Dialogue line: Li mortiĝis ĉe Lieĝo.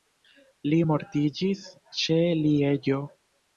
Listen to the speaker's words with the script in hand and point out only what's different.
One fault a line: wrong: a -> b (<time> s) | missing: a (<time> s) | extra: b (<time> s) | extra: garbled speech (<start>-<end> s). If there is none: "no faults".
no faults